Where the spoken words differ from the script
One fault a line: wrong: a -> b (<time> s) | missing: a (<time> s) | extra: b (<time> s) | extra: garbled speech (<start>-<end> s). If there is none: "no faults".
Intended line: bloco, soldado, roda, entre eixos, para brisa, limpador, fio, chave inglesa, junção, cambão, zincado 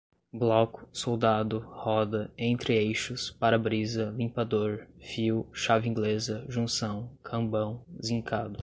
no faults